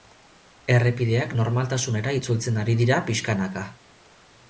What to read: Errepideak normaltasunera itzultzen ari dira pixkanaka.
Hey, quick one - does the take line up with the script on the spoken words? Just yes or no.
yes